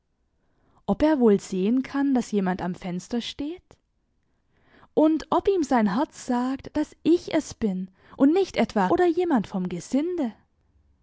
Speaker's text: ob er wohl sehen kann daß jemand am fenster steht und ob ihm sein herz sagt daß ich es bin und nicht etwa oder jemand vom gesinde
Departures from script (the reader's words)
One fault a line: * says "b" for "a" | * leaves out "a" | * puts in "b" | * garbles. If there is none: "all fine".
all fine